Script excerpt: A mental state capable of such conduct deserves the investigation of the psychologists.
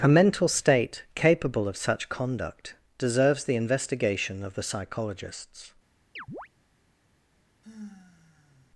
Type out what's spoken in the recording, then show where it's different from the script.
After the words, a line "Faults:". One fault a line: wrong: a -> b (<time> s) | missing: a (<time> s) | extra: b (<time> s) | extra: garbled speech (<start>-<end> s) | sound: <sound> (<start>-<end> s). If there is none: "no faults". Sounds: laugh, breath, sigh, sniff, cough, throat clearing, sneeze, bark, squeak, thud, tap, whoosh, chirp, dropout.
A mental state capable of such conduct deserves the investigation of the psychologists.
Faults:
sound: chirp (6.2-6.5 s)
sound: sigh (7.6-8.7 s)